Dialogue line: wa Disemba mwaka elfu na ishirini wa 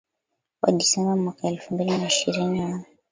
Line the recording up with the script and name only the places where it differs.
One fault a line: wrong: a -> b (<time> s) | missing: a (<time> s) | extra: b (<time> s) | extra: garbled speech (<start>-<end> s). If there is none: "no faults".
extra: mbili (1.7 s)